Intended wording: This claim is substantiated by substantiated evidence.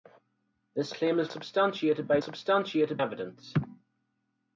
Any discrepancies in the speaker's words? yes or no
no